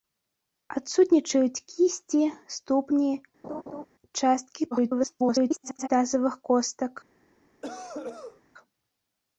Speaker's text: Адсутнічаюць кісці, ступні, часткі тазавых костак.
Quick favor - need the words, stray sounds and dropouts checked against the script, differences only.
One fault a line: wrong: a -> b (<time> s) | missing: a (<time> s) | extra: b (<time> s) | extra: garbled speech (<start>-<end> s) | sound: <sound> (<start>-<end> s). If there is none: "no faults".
sound: laugh (3.4-3.9 s)
extra: garbled speech (4.7-5.9 s)
sound: cough (7.6-8.4 s)